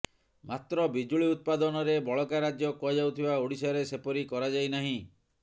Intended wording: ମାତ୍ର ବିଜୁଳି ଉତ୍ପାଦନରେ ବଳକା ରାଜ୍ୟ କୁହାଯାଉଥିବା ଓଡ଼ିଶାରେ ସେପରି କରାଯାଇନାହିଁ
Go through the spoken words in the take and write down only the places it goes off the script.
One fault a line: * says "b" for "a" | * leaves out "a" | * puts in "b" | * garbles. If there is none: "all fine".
all fine